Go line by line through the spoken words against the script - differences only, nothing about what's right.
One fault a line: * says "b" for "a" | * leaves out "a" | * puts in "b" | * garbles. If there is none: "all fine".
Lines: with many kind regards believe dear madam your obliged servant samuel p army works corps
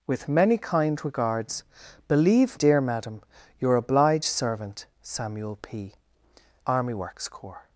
all fine